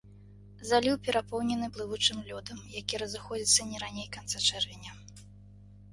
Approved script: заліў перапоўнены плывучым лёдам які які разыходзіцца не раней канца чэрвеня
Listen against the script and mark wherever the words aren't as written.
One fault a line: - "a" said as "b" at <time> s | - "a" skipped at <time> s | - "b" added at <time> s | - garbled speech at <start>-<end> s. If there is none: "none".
- "які" skipped at 2.9 s